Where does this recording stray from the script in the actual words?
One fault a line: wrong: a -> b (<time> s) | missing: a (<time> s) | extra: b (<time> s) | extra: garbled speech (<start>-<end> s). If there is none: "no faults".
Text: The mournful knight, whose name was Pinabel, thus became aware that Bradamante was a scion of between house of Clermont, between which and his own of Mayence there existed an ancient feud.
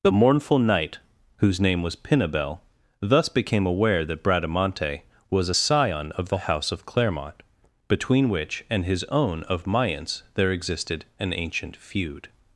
wrong: between -> the (6.3 s)